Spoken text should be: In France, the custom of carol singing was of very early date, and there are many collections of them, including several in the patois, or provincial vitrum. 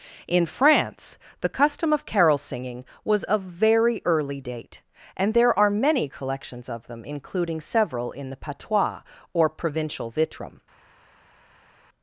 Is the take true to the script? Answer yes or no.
yes